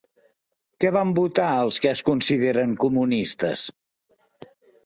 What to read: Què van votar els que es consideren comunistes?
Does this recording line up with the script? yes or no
yes